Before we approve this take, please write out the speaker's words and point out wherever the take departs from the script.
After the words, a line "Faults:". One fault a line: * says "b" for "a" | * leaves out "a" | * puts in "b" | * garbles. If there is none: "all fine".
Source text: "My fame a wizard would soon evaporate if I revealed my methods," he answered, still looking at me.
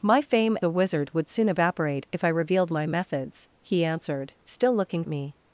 "My fame a wizard would soon evaporate if I revealed my methods," he answered, still looking at me.
Faults:
all fine